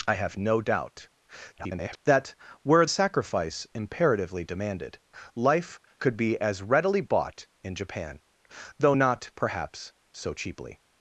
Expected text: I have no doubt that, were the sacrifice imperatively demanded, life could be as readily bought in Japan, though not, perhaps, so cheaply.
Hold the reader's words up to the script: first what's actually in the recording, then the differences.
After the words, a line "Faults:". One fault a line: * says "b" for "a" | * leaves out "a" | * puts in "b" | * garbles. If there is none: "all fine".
I have no doubt [garbled] that, were sacrifice imperatively demanded, life could be as readily bought in Japan, though not, perhaps, so cheaply.
Faults:
* garbles
* leaves out "the"